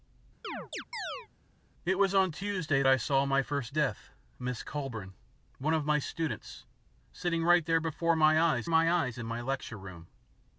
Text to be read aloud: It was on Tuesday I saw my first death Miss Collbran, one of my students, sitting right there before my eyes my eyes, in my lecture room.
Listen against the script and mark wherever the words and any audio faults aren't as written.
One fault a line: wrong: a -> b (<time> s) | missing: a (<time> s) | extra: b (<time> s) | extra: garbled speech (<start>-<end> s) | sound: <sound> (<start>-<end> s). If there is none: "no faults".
sound: chirp (0.4-1.3 s)